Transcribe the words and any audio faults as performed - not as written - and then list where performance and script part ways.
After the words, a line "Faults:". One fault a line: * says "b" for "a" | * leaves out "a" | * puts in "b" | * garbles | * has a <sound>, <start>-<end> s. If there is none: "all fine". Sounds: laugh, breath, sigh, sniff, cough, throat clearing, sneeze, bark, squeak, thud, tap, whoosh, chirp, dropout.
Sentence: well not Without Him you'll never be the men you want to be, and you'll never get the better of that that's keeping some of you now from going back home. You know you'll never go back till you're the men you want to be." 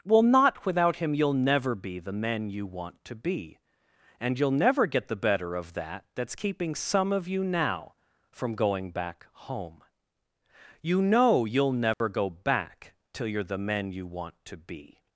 well not Without Him you'll never be the men you want to be, and you'll never get the better of that that's keeping some of you now from going back home. You know you'll never go back till you're the men you want to be."
Faults:
* has a dropout, 11.9-12.0 s